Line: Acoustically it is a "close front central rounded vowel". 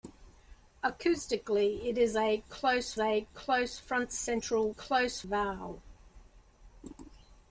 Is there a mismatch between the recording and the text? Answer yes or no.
yes